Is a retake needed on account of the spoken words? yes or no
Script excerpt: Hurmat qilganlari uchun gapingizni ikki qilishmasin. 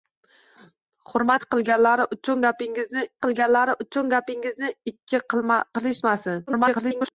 yes